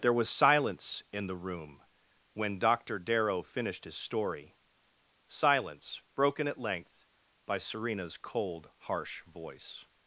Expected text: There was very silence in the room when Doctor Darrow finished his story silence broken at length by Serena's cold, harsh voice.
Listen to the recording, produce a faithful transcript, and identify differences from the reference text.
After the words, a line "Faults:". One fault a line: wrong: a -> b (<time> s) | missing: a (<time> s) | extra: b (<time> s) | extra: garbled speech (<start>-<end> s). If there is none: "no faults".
There was silence in the room when Doctor Darrow finished his story silence broken at length by Serena's cold, harsh voice.
Faults:
missing: very (0.3 s)